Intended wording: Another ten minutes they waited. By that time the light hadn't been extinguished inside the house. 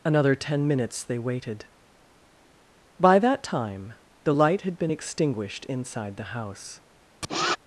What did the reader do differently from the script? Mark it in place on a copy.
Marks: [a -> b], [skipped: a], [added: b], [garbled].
Another ten minutes they waited. By that time the light [hadn't -> had] been extinguished inside the house.